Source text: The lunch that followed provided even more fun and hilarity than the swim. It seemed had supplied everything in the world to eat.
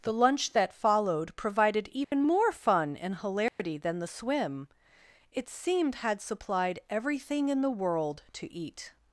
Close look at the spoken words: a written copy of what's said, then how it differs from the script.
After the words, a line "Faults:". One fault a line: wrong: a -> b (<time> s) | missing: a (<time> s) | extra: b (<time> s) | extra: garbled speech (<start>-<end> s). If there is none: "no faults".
The lunch that followed provided even more fun and hilarity than the swim. It seemed had supplied everything in the world to eat.
Faults:
no faults